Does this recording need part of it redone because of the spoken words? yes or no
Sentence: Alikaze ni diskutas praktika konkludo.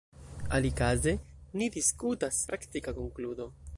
no